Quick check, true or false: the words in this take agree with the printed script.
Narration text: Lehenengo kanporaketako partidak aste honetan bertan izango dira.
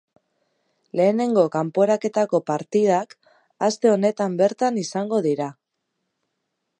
true